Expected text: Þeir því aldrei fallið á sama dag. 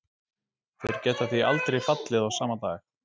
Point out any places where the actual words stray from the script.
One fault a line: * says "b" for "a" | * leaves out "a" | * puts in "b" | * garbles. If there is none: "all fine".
* puts in "geta"